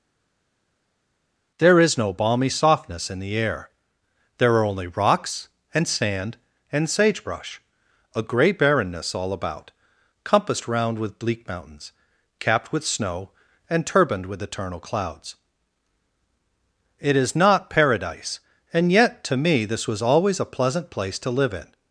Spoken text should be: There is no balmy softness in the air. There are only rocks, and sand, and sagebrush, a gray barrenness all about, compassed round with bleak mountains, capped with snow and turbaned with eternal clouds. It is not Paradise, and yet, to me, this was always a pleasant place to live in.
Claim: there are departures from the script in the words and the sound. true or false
false